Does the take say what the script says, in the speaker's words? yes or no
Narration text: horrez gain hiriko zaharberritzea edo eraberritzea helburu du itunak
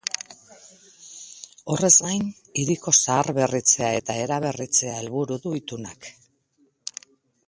no